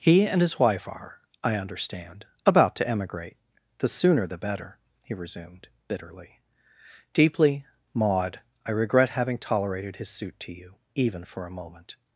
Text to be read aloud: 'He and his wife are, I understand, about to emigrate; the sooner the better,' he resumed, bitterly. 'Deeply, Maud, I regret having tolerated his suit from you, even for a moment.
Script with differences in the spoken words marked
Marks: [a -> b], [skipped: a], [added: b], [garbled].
'He and his wife are, I understand, about to emigrate; the sooner the better,' he resumed, bitterly. 'Deeply, Maud, I regret having tolerated his suit [from -> to] you, even for a moment.